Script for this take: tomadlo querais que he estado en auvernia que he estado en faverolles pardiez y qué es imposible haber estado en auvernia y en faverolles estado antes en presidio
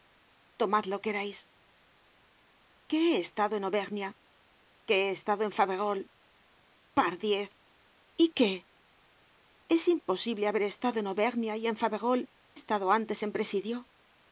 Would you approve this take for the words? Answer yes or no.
yes